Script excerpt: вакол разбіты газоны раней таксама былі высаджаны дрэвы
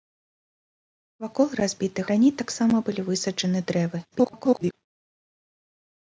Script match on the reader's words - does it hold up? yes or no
no